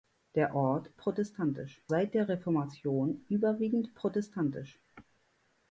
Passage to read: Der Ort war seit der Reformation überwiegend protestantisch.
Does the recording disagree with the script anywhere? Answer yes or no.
yes